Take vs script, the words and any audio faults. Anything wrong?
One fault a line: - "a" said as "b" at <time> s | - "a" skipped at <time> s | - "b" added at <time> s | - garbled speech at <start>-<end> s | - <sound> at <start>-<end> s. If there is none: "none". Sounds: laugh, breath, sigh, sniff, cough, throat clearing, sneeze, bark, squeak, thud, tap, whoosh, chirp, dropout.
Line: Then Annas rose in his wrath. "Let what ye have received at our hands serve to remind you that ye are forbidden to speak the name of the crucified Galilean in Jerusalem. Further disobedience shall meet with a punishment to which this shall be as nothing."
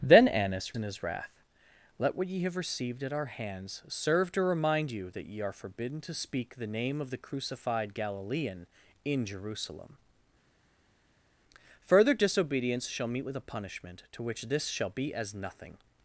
- "rose" skipped at 0.8 s